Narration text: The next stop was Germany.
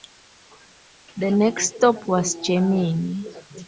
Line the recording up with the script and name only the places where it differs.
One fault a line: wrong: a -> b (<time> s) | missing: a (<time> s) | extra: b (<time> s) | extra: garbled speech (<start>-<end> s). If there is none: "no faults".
no faults